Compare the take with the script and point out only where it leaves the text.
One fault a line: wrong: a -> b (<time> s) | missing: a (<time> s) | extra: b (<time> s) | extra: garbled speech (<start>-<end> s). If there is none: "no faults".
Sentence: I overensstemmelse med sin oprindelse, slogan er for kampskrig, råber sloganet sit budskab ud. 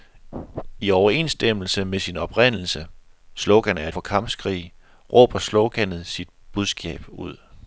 no faults